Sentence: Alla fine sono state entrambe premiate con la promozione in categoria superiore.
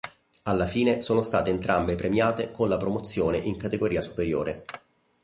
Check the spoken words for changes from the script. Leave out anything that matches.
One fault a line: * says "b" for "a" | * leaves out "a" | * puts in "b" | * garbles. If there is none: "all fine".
all fine